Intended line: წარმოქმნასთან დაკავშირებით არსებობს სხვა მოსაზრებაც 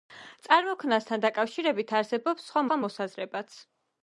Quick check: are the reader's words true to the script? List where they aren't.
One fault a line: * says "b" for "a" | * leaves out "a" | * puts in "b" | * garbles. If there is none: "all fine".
* puts in "სხვა"